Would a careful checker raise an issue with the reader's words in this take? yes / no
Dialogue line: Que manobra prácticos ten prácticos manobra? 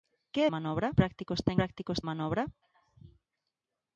no